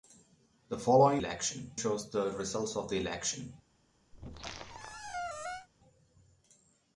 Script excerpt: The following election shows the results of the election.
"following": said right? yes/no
yes